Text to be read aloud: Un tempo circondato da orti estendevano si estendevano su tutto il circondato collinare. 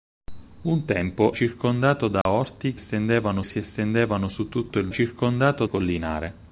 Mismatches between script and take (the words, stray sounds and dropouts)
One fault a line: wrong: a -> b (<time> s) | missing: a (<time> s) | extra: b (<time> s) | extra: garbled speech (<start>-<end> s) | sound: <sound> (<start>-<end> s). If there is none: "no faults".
sound: dropout (2.2-2.3 s)